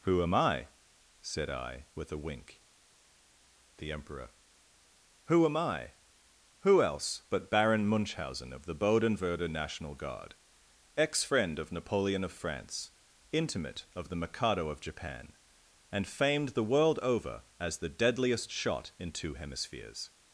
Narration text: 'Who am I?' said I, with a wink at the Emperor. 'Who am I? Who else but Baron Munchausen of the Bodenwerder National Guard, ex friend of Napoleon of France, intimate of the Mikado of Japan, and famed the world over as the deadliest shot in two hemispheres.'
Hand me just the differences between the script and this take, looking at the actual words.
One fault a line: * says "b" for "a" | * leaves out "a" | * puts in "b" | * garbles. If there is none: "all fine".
* leaves out "at"